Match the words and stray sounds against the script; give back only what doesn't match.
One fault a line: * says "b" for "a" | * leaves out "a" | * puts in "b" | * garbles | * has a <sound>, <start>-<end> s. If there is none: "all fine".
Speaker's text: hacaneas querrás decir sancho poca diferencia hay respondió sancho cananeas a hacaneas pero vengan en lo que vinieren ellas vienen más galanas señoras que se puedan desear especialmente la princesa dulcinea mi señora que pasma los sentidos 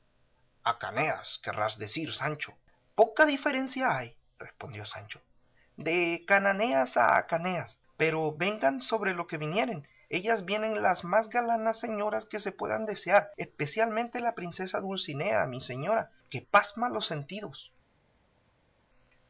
* puts in "de"
* says "sobre" for "en"
* puts in "las"